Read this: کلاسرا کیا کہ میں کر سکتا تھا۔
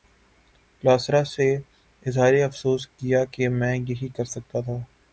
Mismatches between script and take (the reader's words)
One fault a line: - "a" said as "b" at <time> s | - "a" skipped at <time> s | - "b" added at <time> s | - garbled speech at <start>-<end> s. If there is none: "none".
- "سے اظہار افسوس" added at 1.2 s
- "یہی" added at 3.8 s